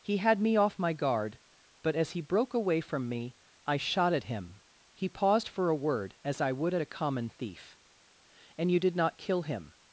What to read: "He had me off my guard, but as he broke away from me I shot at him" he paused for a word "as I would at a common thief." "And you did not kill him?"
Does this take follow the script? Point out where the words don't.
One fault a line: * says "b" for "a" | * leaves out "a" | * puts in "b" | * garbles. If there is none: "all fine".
all fine